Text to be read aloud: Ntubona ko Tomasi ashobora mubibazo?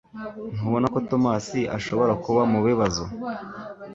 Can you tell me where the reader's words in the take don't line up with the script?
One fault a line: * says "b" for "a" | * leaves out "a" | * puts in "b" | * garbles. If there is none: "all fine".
* puts in "kuba"